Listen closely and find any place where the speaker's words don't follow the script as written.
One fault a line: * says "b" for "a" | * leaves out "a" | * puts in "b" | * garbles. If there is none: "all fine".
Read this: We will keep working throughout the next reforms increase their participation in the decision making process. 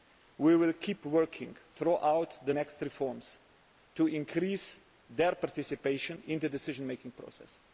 * puts in "to"